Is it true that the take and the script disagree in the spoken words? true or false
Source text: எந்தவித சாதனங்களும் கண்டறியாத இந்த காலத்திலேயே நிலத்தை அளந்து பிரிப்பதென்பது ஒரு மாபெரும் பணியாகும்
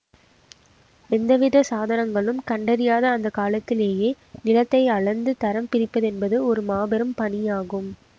true